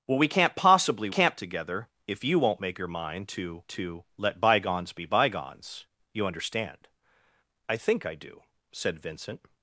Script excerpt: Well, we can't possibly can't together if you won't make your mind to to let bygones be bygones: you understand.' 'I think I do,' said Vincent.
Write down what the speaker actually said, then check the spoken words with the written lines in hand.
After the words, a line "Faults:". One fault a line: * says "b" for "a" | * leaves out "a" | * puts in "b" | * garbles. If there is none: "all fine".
Well, we can't possibly can't together if you won't make your mind to to let bygones be bygones: you understand.' 'I think I do,' said Vincent.
Faults:
all fine